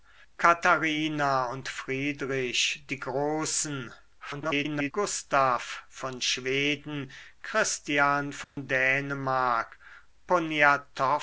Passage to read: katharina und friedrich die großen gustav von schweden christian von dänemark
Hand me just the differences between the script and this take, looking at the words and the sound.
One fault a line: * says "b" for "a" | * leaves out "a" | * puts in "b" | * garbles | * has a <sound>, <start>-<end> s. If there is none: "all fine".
* garbles
* has a dropout, 8.4-8.6 s